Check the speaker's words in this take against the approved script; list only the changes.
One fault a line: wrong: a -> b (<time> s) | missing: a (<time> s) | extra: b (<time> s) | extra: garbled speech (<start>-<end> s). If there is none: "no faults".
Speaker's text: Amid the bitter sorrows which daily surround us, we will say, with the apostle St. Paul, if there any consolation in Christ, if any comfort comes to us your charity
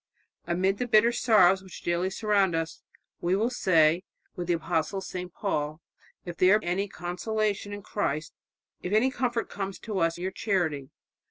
no faults